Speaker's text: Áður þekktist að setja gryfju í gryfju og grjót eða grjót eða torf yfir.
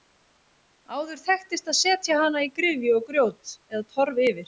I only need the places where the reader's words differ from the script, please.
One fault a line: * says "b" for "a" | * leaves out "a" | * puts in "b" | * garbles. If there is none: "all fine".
* says "hana" for "gryfju"
* leaves out "grjót eða"